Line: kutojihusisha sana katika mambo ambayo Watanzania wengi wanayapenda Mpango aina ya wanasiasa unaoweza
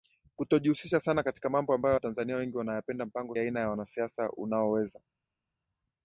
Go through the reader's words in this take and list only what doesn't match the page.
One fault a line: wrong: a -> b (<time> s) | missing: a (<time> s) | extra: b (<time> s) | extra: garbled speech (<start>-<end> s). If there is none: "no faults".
no faults